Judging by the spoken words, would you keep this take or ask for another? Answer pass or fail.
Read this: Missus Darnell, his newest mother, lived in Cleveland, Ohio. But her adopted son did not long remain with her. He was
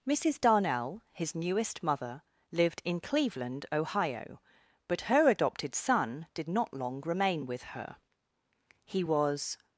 pass